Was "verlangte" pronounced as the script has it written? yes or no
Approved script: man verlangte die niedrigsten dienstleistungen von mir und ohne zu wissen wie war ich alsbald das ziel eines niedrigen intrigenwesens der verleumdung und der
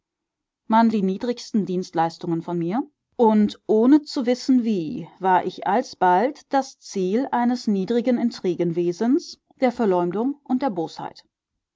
no